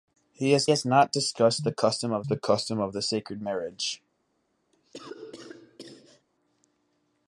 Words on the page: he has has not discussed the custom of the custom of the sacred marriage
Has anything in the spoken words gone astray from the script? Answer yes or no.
no